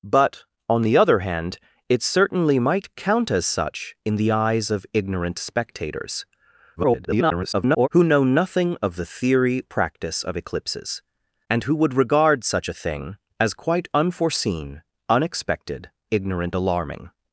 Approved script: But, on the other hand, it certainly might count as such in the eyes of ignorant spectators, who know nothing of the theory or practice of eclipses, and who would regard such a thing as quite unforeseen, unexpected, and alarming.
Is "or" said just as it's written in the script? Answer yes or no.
no